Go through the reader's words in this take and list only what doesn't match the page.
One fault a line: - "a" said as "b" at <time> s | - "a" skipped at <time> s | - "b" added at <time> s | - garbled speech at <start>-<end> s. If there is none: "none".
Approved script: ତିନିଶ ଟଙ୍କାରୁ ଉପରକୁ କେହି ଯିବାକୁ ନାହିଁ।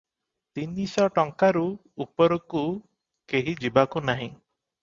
none